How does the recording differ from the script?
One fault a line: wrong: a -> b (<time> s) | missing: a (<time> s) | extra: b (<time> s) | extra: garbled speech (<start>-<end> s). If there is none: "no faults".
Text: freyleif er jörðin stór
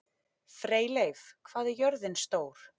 extra: hvað (1.5 s)